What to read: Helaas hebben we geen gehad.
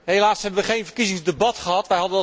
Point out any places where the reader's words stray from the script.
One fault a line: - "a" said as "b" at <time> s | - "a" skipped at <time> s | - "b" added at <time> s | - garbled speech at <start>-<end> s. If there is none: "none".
- "verkiezingsdebat" added at 0.8 s